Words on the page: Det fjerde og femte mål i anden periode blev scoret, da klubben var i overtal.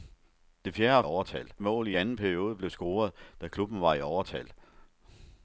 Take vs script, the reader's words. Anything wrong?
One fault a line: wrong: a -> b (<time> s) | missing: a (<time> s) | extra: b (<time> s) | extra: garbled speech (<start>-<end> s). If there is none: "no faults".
wrong: femte -> overtal (1.0 s)